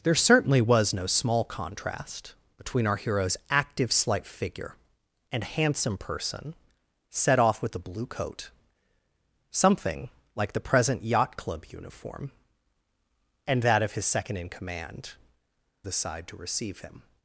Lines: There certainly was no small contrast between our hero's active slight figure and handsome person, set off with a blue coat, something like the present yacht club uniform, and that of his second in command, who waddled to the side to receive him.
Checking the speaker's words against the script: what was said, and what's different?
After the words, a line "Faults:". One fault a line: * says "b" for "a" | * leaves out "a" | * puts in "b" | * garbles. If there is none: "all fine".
There certainly was no small contrast between our hero's active slight figure and handsome person, set off with a blue coat, something like the present yacht club uniform, and that of his second in command, the side to receive him.
Faults:
* leaves out "who waddled to"